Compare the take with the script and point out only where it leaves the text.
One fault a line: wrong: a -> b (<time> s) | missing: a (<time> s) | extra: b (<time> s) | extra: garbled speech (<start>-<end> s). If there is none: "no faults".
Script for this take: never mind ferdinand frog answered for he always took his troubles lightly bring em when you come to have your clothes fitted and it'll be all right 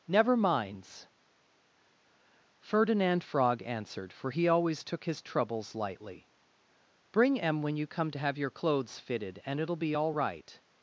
wrong: mind -> minds (0.3 s)